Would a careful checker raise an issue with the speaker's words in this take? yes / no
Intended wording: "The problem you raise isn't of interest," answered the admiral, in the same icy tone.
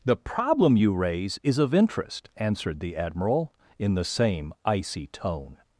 yes